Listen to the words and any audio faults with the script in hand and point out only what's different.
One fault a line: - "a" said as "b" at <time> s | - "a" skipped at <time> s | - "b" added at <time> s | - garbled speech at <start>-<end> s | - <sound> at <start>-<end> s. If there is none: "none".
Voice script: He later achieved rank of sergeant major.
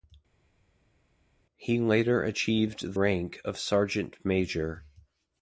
none